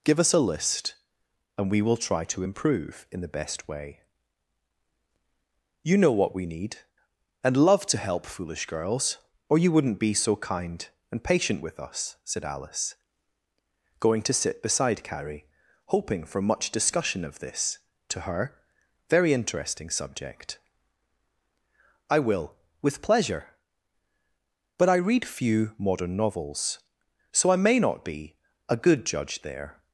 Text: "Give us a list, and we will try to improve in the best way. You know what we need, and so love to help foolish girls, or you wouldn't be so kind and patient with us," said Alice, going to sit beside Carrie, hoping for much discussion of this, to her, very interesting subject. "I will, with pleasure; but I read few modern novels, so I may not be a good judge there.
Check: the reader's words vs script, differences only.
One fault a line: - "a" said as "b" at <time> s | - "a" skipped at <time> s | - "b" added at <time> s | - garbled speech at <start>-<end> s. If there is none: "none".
- "so" skipped at 7.6 s